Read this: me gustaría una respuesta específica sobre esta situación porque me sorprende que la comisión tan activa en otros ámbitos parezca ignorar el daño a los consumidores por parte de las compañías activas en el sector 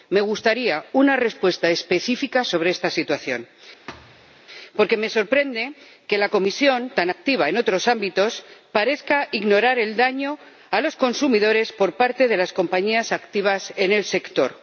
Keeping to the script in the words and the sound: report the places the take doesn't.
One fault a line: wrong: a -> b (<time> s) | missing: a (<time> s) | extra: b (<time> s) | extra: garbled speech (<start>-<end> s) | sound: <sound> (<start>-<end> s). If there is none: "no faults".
sound: thud (3.9-4.4 s)